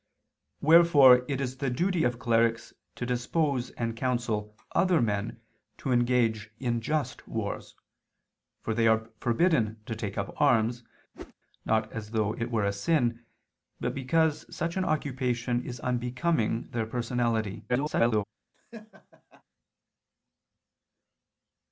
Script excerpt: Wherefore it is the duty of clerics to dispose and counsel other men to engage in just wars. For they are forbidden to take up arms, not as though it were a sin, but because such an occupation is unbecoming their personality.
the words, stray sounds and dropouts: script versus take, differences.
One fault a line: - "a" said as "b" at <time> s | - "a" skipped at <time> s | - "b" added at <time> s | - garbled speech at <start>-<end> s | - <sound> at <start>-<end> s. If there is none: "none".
- whoosh at 11.1-11.3 s
- garbled speech at 17.7-18.2 s
- laugh at 18.5-19.4 s